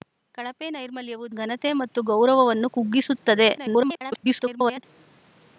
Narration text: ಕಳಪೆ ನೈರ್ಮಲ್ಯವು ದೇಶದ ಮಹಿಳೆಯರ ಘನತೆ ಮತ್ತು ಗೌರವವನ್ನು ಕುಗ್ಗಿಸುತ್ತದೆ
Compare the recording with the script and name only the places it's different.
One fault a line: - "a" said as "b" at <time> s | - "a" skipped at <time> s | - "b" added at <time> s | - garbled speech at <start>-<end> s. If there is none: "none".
- "ದೇಶದ ಮಹಿಳೆಯರ" skipped at 1.2 s
- garbled speech at 3.6-4.8 s